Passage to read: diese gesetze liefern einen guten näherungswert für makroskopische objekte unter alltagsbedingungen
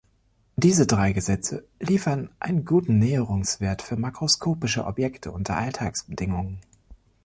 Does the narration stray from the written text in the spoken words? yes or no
yes